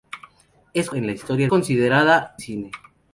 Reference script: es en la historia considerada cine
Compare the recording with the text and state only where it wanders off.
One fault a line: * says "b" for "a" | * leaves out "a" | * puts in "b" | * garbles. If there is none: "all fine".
all fine